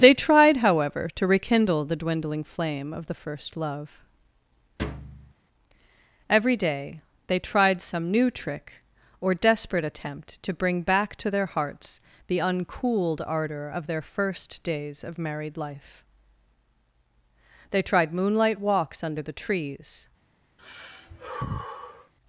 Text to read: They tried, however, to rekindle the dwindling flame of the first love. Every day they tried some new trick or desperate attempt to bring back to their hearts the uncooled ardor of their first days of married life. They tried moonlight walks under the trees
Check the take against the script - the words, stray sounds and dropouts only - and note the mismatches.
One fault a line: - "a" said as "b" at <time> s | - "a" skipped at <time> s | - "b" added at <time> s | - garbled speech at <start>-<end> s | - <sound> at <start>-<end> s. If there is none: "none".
- thud at 4.8-5.3 s
- sigh at 20.6-22.1 s